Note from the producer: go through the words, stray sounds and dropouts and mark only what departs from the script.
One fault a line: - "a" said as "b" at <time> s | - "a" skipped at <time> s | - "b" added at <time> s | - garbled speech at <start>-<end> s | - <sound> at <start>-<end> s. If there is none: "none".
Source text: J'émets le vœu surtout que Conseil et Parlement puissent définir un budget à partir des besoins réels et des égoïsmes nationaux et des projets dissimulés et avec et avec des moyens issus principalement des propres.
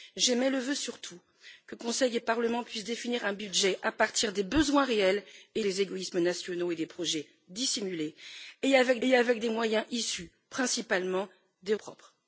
none